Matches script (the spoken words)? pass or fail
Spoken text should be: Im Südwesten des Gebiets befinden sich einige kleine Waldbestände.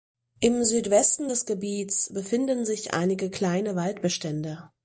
pass